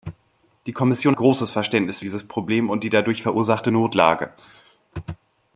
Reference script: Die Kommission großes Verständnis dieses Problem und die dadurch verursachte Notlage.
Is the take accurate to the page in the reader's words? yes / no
yes